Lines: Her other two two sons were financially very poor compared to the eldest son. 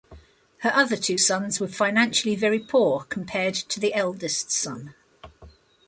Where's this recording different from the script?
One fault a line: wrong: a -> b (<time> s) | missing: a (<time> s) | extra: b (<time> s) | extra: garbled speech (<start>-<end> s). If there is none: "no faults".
missing: two (1.2 s)